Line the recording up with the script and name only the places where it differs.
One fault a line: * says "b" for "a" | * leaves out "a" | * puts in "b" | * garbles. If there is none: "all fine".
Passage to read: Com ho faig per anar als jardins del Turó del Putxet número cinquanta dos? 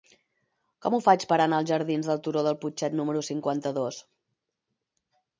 all fine